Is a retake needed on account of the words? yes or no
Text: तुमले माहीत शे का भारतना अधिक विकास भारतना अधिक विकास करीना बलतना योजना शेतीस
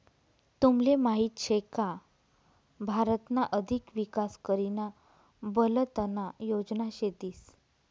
yes